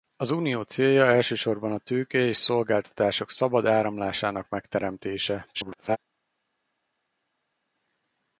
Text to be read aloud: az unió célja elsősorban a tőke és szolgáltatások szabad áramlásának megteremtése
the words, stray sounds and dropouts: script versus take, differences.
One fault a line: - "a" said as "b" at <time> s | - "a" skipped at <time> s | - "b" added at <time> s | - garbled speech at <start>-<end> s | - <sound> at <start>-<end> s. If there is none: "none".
- garbled speech at 5.5-6.0 s